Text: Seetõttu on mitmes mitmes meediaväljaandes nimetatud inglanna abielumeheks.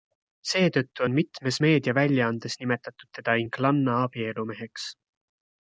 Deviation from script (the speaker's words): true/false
true